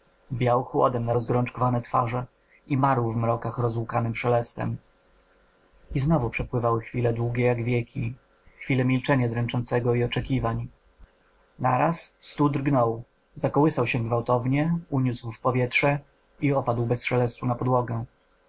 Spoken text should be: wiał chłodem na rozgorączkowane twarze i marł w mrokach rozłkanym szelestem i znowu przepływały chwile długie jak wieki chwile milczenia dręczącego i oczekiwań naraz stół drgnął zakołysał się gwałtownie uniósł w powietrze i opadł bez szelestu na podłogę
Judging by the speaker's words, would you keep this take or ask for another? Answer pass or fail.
pass